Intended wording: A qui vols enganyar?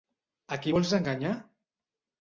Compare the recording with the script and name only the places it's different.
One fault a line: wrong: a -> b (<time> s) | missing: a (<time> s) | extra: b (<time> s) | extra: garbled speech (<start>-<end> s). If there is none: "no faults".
no faults